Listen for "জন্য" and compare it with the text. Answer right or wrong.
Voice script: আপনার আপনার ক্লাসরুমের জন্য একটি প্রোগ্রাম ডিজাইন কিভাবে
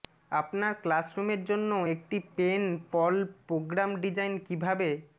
right